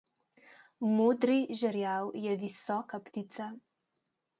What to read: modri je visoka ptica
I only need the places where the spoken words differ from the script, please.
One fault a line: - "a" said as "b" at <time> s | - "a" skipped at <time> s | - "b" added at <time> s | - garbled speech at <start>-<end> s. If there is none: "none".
- "žerjav" added at 1.6 s